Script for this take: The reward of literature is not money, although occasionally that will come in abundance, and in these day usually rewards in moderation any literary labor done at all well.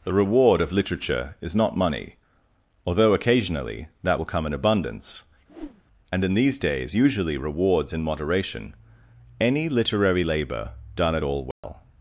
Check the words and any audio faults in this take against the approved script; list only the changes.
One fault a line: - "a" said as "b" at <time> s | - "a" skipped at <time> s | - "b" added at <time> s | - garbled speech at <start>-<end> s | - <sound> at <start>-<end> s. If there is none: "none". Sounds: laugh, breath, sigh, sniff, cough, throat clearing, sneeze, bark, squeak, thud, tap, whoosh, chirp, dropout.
- whoosh at 5.5-5.8 s
- "day" said as "days" at 6.6 s
- dropout at 11.5-11.6 s